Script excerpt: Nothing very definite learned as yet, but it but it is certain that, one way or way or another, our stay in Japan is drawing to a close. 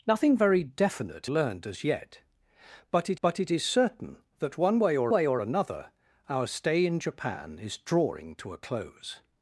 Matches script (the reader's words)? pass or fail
pass